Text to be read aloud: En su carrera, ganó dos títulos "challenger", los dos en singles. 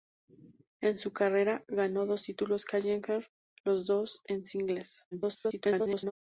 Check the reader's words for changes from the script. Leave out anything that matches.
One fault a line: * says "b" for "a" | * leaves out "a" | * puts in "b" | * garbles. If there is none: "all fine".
* garbles